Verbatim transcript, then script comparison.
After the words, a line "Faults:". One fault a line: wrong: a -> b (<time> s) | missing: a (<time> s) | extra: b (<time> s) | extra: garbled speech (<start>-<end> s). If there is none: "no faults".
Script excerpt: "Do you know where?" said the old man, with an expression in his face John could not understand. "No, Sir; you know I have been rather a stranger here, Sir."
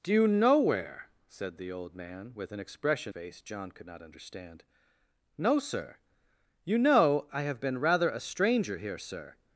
"Do you know where?" said the old man, with an expression face John could not understand. "No, Sir; you know I have been rather a stranger here, Sir."
Faults:
missing: in his (3.1 s)